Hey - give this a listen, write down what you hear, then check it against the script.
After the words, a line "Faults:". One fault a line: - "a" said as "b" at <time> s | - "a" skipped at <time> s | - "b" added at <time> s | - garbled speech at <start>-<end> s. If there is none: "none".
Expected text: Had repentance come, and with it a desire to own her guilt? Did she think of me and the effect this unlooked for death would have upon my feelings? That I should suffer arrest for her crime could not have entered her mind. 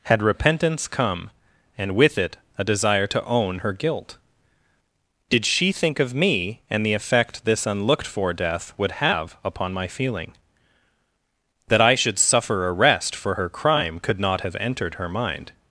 Had repentance come, and with it a desire to own her guilt? Did she think of me and the effect this unlooked for death would have upon my feeling? That I should suffer arrest for her crime could not have entered her mind.
Faults:
- "feelings" said as "feeling" at 9.9 s